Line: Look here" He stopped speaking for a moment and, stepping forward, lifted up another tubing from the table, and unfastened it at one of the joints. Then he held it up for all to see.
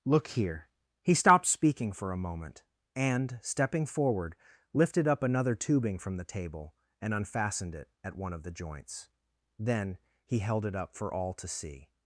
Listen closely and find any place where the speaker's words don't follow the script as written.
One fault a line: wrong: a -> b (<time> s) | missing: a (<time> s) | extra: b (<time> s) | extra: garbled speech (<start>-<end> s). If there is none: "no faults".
no faults